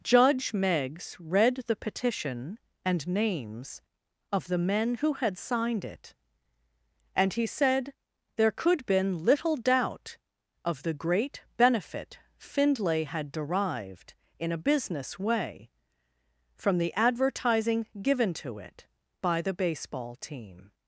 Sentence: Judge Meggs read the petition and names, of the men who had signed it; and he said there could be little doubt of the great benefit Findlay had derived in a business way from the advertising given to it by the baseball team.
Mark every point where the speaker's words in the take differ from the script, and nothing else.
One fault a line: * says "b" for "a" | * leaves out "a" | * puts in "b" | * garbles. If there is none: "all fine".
* says "been" for "be"